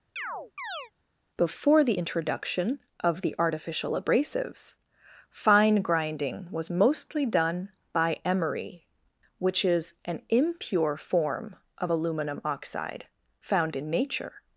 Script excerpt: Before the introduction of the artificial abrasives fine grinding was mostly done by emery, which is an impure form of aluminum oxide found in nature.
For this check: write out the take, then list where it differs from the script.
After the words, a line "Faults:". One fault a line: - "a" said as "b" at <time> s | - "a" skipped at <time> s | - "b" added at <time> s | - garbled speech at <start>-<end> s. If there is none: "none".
Before the introduction of the artificial abrasives fine grinding was mostly done by emery, which is an impure form of aluminum oxide found in nature.
Faults:
none